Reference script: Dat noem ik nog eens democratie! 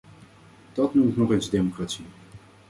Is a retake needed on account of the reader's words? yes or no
no